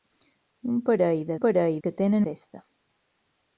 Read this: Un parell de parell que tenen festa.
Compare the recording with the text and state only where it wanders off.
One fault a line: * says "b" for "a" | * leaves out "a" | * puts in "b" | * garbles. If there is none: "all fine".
all fine